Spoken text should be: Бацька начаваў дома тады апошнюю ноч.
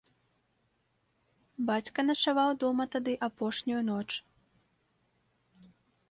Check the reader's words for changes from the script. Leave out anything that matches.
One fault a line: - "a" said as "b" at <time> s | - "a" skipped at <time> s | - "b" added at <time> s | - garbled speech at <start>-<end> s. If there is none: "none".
none